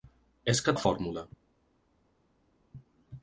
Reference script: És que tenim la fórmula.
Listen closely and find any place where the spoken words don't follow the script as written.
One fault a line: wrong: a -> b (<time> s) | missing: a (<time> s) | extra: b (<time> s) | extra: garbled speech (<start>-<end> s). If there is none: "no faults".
missing: tenim (0.8 s)